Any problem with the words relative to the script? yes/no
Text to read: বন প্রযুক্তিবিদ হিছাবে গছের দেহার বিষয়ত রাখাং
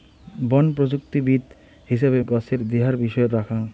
no